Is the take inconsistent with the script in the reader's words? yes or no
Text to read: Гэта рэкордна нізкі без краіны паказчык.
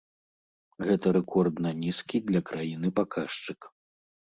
yes